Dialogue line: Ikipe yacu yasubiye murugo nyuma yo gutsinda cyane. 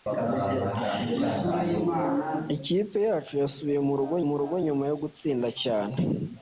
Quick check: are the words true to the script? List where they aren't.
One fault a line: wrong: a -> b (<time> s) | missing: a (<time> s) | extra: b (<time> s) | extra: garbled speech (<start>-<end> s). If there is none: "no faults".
extra: murugo (4.3 s)